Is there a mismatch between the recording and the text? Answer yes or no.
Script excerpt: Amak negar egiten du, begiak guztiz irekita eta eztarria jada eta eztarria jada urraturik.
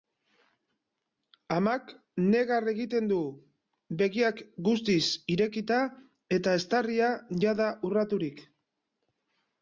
yes